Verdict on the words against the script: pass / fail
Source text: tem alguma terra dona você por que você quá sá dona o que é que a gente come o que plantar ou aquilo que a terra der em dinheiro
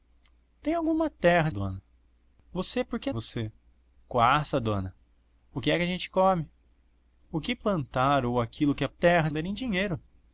pass